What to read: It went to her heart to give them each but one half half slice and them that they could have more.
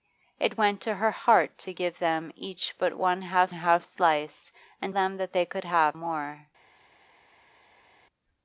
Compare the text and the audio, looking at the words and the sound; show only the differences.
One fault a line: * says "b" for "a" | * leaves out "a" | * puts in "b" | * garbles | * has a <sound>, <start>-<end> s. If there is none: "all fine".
all fine